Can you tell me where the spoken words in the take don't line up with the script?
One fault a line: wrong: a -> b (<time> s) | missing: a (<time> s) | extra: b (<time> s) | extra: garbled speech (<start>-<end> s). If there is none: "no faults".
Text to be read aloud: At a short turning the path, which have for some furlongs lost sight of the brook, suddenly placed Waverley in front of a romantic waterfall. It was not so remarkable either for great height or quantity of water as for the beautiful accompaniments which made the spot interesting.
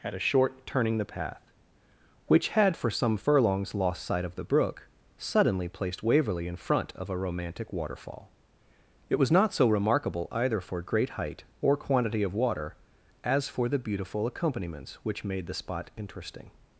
wrong: have -> had (2.5 s)